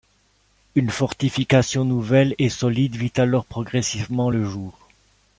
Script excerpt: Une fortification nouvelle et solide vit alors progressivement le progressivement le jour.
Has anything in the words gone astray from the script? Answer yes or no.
yes